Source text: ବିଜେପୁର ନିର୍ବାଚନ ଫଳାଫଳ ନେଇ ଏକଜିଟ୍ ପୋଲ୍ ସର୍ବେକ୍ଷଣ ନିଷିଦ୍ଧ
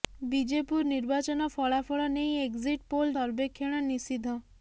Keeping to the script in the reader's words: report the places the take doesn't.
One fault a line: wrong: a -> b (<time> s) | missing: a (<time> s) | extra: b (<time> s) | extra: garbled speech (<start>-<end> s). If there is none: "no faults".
no faults